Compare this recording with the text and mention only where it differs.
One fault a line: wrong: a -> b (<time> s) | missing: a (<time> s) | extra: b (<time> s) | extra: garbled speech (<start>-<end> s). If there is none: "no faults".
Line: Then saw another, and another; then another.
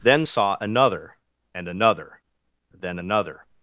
no faults